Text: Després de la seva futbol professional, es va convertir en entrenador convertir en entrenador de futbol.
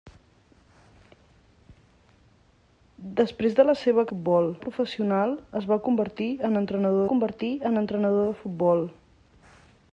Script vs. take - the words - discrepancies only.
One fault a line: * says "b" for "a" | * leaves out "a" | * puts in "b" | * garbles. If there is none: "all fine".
all fine